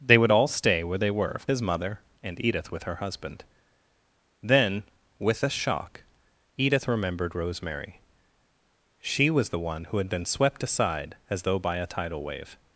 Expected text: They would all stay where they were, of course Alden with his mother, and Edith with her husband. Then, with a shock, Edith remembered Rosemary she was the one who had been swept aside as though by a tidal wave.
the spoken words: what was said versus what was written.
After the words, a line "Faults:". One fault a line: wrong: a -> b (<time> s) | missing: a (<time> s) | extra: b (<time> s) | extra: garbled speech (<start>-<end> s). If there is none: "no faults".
They would all stay where they were, of his mother, and Edith with her husband. Then, with a shock, Edith remembered Rosemary she was the one who had been swept aside as though by a tidal wave.
Faults:
missing: course Alden with (1.5 s)